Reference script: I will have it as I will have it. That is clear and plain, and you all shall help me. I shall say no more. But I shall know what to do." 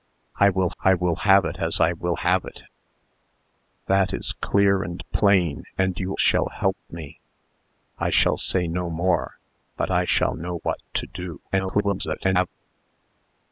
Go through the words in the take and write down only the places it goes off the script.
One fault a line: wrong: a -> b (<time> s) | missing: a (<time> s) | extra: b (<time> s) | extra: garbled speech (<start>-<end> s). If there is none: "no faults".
extra: I will (0.8 s)
missing: all (6.1 s)
extra: garbled speech (11.5-12.5 s)